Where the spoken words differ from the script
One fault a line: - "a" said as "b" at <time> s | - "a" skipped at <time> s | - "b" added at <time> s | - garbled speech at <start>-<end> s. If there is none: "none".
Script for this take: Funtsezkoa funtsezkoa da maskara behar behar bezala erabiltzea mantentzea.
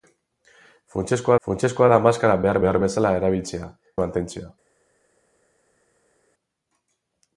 none